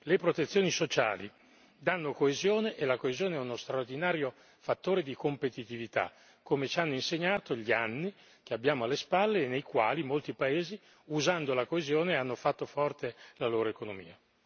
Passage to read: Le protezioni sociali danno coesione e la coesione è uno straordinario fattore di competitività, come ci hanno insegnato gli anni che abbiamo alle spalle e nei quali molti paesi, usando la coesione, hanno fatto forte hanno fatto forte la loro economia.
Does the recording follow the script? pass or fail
fail